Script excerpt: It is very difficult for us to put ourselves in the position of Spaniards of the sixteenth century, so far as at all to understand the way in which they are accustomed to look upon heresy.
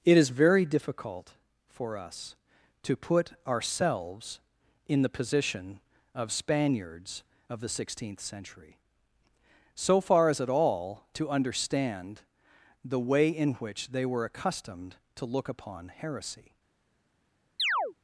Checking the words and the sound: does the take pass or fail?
fail